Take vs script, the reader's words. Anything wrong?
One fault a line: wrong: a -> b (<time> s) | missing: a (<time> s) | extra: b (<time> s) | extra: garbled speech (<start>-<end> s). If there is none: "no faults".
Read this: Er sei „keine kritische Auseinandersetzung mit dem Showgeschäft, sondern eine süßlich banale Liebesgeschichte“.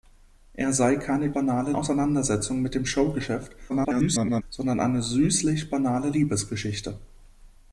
wrong: kritische -> banale (1.3 s)
extra: garbled speech (3.7-4.4 s)